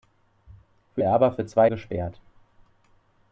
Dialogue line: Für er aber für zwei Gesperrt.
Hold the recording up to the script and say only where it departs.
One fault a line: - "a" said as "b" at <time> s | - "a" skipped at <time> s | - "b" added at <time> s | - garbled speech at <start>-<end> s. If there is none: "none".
none